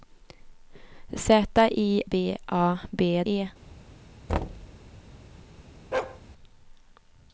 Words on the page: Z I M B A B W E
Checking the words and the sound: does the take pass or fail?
fail